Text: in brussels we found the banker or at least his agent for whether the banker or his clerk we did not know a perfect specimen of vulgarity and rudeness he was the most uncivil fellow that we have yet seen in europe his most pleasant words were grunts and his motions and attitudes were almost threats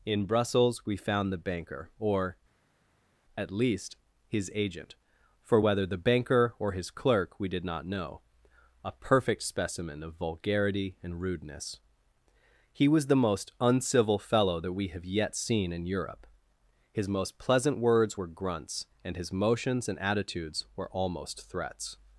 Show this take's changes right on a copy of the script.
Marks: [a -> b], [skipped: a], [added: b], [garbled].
in brussels we found the banker or at least his agent for whether the banker or his clerk we did not know a perfect specimen of vulgarity and rudeness he was the most uncivil fellow that we have yet seen in europe his most pleasant words were grunts and his motions and attitudes were almost threats